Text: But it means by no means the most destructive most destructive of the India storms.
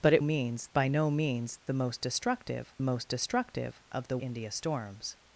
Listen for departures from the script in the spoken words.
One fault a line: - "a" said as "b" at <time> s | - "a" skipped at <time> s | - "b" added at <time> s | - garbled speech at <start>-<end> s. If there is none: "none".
none